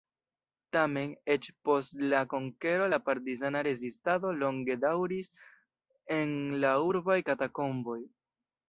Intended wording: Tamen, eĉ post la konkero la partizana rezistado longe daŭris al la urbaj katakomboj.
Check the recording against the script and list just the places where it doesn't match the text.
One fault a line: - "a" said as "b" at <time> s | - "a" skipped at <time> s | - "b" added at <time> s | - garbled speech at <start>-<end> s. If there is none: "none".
- "al" said as "en" at 6.2 s